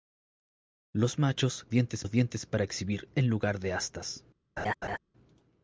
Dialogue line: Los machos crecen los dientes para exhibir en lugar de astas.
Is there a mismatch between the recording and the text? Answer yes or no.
yes